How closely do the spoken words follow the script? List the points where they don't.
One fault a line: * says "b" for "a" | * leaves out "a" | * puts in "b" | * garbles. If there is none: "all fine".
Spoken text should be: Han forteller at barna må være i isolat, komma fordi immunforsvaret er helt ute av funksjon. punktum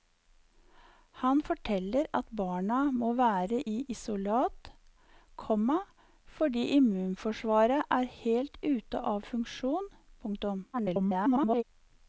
* garbles